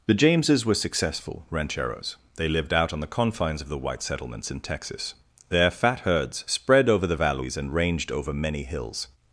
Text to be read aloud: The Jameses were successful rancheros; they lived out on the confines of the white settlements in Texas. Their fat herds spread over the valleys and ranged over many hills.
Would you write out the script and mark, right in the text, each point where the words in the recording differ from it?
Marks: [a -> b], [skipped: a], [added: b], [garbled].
The Jameses were successful rancheros; they lived out on the confines of the white settlements in Texas. Their fat herds spread over the valleys and ranged over many hills.